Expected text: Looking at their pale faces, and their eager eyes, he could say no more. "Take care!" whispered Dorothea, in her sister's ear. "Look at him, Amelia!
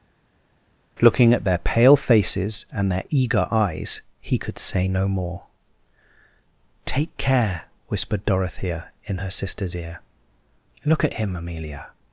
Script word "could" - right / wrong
right